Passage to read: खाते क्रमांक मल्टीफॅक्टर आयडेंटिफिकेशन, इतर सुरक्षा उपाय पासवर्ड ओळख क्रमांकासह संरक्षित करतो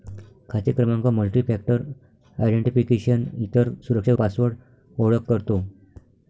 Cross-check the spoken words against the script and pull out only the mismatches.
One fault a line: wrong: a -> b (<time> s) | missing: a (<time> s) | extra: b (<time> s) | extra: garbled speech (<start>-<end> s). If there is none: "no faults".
missing: उपाय (4.1 s)
missing: क्रमांकासह संरक्षित (5.3 s)